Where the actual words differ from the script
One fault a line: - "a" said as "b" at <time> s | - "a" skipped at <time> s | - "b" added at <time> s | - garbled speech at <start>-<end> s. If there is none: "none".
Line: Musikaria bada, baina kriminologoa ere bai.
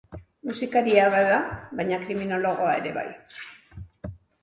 none